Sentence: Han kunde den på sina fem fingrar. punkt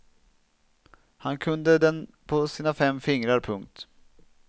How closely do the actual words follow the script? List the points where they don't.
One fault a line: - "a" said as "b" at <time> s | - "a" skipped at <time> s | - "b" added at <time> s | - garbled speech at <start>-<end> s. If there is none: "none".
none